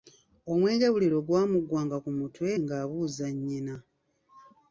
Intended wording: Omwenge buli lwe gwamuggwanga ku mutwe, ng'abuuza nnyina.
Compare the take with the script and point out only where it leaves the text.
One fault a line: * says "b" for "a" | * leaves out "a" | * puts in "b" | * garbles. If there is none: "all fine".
all fine